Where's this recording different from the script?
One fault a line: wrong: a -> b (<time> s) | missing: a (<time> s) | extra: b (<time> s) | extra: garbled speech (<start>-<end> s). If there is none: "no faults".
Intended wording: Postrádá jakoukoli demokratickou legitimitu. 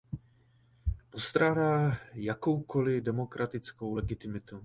no faults